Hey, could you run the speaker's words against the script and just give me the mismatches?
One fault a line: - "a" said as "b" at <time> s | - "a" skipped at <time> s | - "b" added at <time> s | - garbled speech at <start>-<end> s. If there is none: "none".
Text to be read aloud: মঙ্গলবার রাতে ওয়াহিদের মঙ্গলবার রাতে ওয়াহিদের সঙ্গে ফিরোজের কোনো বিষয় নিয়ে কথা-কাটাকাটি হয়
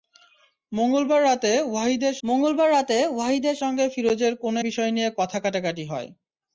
none